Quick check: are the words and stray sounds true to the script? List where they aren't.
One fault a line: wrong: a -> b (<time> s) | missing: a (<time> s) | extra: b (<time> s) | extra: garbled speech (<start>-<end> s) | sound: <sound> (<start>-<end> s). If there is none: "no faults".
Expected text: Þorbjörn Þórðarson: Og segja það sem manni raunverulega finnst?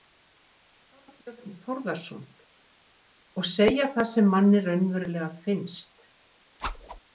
sound: whoosh (6.6-7.0 s)